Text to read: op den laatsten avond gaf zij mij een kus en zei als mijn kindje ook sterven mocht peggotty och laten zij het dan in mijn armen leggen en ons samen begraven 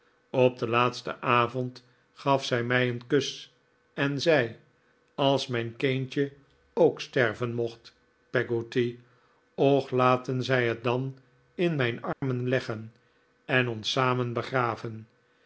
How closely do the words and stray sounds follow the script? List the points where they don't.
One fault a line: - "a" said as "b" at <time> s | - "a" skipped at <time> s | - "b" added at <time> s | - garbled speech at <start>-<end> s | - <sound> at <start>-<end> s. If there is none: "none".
- dropout at 12.1-12.2 s